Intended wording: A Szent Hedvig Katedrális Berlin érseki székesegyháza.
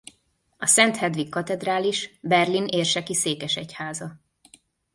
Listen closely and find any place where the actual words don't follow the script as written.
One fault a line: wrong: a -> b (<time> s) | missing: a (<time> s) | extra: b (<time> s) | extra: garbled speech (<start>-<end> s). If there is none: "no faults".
no faults